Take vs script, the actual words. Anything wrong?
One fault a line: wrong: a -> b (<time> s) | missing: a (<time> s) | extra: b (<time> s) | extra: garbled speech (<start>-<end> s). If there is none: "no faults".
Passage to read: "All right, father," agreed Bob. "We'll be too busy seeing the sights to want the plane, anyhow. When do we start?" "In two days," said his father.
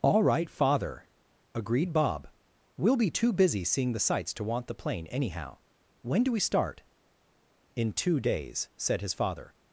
no faults